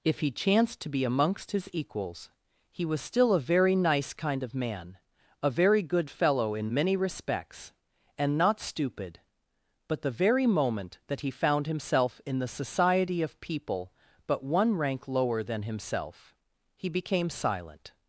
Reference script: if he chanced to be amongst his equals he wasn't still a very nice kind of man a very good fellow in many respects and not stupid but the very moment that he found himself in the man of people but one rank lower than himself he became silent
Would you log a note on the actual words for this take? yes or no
yes